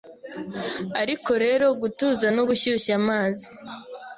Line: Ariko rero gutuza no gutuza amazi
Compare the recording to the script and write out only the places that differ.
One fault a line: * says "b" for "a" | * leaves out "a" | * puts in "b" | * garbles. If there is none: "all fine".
* says "gushyushya" for "gutuza"